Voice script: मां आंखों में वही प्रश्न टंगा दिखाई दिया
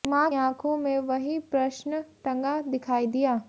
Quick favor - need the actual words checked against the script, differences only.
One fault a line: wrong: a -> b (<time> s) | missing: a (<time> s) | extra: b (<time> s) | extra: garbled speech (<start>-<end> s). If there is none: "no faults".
no faults